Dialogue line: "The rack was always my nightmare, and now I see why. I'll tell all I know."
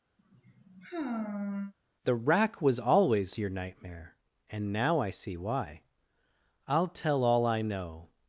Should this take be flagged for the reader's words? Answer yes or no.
yes